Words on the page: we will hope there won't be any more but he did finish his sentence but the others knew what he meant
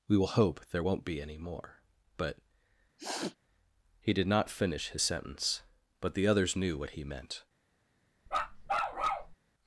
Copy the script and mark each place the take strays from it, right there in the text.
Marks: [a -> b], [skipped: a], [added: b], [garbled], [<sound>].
we will hope there won't be any more but [sniff] he did [added: not] finish his sentence but the others knew what he meant [bark]